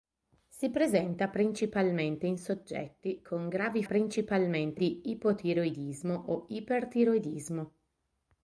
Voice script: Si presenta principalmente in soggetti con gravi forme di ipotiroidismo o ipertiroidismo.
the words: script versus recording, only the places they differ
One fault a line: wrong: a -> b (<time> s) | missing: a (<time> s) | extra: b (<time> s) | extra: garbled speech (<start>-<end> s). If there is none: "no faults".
wrong: forme -> principalmente (3.8 s)